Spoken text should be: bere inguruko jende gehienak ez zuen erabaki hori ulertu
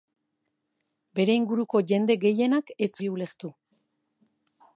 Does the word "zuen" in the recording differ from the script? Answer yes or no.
yes